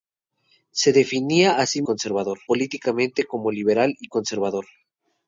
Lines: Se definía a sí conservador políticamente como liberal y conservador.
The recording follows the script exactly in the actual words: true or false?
true